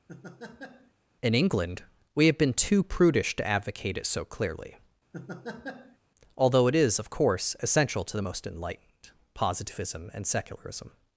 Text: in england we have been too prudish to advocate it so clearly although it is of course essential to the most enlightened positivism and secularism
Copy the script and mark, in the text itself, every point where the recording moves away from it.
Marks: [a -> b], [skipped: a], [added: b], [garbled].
in england we have been too prudish to advocate it so clearly although it is of course essential to the most enlightened positivism and secularism